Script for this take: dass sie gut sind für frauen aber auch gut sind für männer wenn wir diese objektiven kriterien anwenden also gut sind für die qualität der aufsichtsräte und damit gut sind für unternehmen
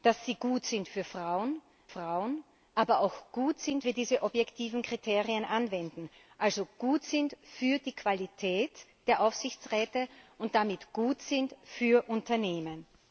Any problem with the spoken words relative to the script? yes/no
yes